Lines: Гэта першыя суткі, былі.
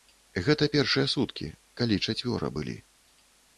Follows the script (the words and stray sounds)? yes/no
no